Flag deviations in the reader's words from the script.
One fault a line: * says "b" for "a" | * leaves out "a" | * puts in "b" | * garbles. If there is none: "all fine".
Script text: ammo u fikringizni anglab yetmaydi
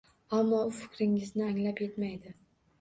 all fine